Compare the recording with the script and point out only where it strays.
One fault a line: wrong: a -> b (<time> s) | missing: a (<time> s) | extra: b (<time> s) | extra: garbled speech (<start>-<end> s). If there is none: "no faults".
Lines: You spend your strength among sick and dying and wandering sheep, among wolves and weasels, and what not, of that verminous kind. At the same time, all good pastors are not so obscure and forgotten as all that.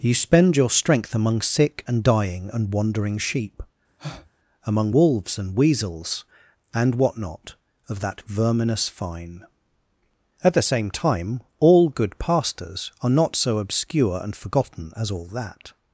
wrong: kind -> fine (8.9 s)